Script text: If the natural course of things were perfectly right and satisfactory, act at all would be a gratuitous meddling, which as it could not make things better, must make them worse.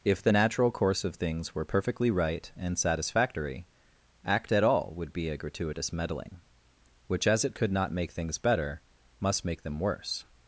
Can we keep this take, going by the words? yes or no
yes